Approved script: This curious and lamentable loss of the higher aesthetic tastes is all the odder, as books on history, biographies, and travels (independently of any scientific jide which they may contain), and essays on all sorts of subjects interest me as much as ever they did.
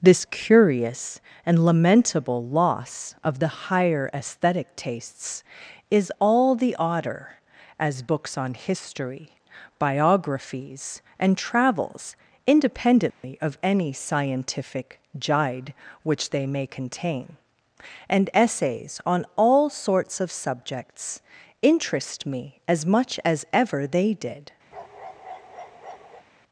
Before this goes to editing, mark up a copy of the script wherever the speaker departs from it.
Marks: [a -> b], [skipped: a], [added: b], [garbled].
This curious and lamentable loss of the higher aesthetic tastes is all the odder, as books on history, biographies, and travels (independently of any scientific jide which they may contain), and essays on all sorts of subjects interest me as much as ever they did.